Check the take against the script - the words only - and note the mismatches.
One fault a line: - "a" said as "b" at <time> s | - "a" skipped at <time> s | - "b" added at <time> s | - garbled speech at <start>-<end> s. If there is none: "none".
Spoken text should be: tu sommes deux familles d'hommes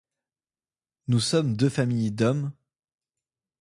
- "tu" said as "nous" at 1.1 s